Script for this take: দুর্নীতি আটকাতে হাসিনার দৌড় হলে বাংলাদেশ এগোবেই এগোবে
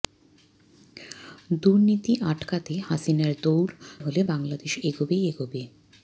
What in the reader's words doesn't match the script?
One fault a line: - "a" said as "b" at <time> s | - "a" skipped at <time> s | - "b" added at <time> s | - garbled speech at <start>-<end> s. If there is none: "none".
none